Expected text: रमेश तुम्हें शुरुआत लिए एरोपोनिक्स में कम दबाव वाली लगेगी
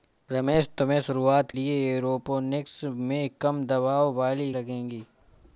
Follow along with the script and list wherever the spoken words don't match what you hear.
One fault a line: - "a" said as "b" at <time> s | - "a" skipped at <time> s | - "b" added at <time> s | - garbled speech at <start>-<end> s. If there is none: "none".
none